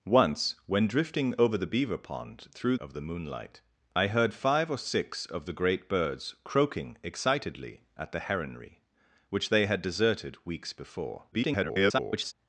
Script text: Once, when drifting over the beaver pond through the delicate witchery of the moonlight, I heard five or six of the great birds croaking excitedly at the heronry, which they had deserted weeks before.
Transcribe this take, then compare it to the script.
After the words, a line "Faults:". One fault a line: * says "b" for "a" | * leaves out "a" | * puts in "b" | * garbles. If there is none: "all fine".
Once, when drifting over the beaver pond through of the moonlight, I heard five or six of the great birds croaking excitedly at the heronry, which they had deserted weeks before. [garbled]
Faults:
* leaves out "the delicate witchery"
* garbles